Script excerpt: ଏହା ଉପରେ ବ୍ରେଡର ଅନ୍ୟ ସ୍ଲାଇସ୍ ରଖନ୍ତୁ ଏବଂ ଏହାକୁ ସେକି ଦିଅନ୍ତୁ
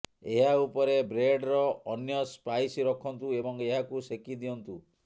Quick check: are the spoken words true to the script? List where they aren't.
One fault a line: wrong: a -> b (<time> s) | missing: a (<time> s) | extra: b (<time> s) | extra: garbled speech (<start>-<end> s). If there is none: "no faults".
no faults